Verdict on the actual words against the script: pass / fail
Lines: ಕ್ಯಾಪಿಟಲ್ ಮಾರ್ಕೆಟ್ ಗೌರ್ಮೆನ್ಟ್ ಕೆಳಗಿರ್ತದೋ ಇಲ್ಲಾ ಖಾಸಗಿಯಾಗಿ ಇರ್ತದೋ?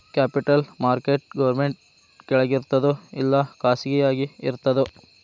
pass